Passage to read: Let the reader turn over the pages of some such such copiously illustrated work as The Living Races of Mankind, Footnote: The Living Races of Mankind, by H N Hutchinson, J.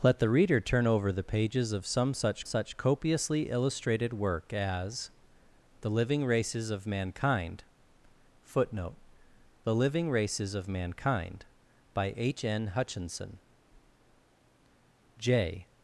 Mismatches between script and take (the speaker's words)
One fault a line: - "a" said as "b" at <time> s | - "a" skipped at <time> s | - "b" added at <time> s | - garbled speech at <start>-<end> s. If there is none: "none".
none